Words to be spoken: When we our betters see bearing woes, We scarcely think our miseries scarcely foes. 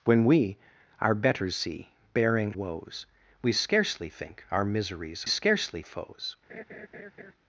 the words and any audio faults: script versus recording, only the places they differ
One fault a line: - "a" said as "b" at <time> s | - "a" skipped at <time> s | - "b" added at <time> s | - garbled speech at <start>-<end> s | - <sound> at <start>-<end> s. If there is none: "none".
- laugh at 6.5-7.3 s